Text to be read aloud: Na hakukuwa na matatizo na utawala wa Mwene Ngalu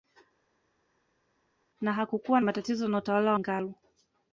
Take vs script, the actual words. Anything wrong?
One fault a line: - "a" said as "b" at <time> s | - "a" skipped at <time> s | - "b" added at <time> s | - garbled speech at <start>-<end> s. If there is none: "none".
- "na" skipped at 2.4 s
- "wa Mwene" skipped at 3.3 s